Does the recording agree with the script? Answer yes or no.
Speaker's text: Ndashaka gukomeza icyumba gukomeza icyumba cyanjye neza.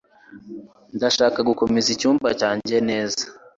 no